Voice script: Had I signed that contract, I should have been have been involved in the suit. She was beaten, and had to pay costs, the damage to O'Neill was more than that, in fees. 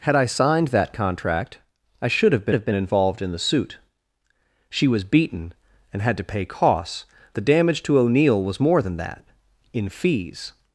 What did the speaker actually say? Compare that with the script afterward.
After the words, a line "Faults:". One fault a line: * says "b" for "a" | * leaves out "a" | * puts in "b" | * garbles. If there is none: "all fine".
Had I signed that contract, I should have been have been involved in the suit. She was beaten, and had to pay costs, the damage to O'Neill was more than that, in fees.
Faults:
all fine